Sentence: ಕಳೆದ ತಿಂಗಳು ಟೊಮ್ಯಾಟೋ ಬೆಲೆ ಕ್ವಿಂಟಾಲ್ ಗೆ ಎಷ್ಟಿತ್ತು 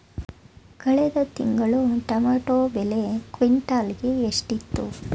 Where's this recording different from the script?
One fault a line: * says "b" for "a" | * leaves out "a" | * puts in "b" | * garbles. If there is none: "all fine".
all fine